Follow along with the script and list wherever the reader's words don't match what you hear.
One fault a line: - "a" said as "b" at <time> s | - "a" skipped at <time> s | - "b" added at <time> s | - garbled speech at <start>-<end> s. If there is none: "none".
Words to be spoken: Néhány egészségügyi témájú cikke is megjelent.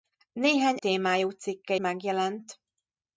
- "egészségügyi" skipped at 0.8 s
- "is" skipped at 1.8 s